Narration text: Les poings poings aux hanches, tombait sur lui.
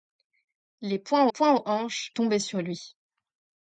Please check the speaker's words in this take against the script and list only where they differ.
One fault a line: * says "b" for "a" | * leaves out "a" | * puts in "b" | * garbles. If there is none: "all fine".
all fine